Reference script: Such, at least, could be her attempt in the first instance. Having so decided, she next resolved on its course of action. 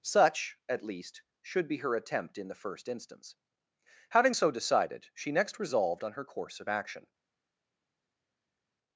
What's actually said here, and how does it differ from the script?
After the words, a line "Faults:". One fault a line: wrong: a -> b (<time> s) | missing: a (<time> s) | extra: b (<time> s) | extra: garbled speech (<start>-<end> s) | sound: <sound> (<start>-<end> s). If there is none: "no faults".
Such, at least, should be her attempt in the first instance. Having so decided, she next resolved on her course of action.
Faults:
wrong: could -> should (1.4 s)
wrong: its -> her (6.1 s)